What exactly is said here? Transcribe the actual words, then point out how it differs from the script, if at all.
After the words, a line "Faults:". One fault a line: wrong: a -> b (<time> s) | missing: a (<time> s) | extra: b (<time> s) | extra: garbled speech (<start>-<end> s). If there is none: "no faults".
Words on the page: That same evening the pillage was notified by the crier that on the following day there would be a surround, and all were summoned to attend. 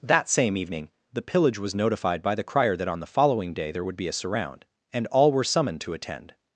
That same evening the pillage was notified by the crier that on the following day there would be a surround, and all were summoned to attend.
Faults:
no faults